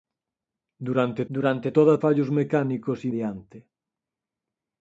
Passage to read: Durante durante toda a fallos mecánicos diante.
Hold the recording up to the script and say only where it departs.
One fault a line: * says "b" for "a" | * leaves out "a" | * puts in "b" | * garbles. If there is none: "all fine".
all fine